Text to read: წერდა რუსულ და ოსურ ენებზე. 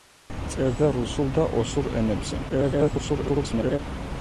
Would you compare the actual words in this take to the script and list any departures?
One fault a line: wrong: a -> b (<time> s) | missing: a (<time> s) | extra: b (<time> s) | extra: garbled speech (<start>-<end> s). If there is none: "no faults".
extra: garbled speech (2.5-3.8 s)